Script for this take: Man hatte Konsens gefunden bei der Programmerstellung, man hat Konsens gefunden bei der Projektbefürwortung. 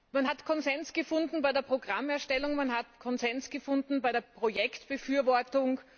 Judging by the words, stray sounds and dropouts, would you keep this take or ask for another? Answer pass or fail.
fail